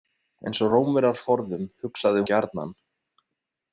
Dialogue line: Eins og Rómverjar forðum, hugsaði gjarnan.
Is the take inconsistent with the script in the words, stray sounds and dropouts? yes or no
no